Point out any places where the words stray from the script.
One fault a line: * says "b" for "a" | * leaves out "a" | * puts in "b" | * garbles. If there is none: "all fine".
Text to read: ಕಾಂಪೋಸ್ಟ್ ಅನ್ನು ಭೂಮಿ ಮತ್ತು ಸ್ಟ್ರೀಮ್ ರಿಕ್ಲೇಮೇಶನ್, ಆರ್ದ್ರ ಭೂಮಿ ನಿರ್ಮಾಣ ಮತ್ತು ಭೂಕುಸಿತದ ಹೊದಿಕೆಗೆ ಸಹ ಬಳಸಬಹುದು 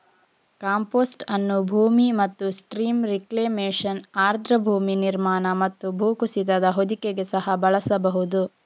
all fine